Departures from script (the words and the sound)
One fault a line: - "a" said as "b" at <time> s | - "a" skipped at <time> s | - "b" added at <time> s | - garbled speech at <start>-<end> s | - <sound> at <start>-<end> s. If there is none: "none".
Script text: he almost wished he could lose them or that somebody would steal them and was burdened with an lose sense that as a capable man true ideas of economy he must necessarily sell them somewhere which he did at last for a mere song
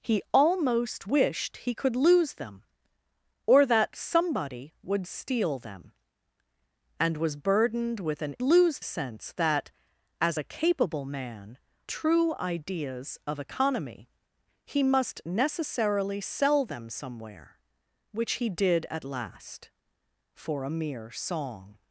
none